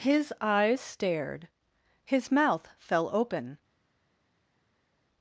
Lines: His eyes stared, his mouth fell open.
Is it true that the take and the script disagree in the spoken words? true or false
false